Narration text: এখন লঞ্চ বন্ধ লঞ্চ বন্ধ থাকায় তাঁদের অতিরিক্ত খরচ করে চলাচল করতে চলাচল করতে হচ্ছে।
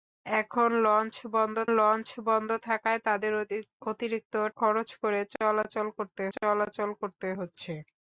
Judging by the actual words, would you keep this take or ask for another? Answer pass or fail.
pass